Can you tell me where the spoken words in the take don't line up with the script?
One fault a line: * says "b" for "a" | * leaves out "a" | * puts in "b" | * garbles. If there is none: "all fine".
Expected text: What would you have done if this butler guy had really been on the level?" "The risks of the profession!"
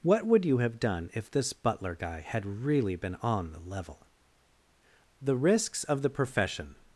all fine